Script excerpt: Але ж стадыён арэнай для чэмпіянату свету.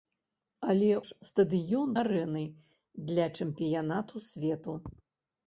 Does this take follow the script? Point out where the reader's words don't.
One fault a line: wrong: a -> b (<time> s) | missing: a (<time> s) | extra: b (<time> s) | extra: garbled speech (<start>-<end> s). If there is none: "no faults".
no faults